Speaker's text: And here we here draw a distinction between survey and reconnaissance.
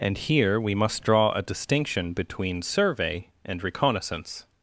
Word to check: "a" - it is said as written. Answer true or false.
true